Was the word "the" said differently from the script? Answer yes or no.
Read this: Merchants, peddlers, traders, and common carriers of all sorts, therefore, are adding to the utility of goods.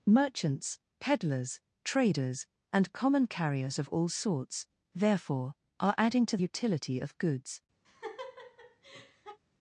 yes